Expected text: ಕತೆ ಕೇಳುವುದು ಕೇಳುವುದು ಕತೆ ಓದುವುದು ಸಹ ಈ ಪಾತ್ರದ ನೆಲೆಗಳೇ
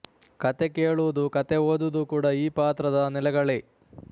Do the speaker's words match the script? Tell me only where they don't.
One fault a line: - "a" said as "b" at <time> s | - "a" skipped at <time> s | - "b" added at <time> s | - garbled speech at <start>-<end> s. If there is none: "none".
- "ಕೇಳುವುದು" skipped at 1.2 s
- "ಸಹ" said as "ಕೂಡ" at 2.0 s